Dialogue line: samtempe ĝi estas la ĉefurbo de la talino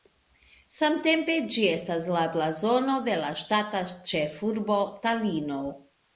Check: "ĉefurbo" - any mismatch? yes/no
yes